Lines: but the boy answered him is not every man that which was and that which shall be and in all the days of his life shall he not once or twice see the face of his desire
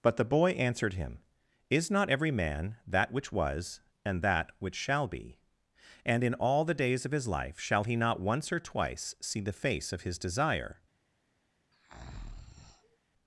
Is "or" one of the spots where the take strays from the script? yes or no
no